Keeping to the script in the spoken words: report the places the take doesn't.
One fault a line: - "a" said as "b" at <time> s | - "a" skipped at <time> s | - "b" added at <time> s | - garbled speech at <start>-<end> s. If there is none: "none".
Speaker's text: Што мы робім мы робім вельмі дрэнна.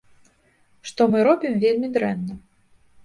- "мы робім" skipped at 1.5 s